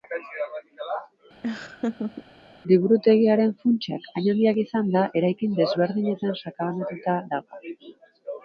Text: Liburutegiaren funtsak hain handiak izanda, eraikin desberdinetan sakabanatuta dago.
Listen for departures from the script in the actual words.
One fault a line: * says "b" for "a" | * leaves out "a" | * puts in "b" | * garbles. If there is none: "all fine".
all fine